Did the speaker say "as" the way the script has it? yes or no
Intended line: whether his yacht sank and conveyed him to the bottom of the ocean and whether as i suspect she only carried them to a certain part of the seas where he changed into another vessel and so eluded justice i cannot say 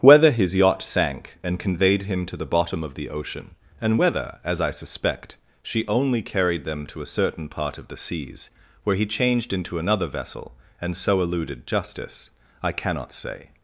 yes